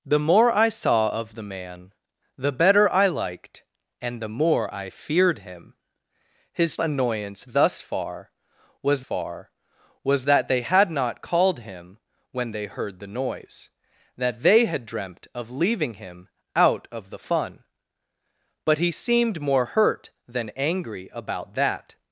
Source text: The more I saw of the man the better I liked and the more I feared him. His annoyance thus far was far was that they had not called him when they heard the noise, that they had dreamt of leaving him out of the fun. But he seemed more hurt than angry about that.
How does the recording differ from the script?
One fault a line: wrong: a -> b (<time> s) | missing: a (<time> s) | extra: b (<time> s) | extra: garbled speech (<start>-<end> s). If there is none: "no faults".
no faults